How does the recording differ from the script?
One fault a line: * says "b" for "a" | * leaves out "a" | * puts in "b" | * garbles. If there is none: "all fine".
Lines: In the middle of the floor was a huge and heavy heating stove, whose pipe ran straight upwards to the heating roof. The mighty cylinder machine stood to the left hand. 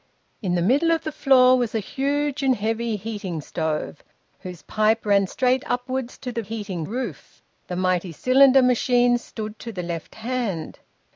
all fine